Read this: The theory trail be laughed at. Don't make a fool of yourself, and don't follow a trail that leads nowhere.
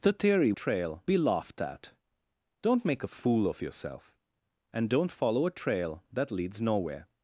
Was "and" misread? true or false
false